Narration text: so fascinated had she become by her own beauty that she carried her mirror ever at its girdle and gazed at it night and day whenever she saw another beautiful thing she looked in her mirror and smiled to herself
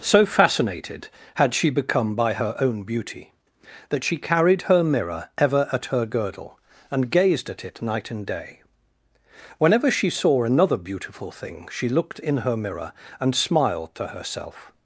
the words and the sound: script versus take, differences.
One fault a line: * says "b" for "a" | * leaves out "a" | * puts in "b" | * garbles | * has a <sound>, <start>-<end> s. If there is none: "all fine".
* says "her" for "its"